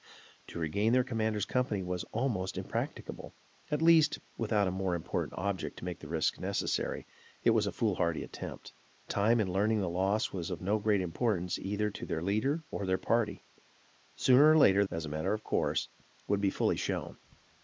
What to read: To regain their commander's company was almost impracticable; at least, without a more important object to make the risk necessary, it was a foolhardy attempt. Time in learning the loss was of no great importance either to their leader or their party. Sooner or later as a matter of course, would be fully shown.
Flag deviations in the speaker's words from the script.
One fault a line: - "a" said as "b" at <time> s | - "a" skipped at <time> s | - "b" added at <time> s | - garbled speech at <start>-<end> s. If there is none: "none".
none